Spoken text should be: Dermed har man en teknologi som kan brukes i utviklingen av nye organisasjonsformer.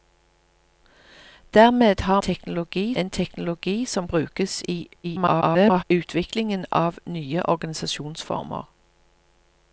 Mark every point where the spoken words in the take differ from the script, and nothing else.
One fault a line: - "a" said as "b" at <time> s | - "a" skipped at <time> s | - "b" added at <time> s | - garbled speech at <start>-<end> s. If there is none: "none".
- "man" said as "teknologi" at 2.2 s
- "kan" skipped at 4.1 s
- garbled speech at 5.0-5.8 s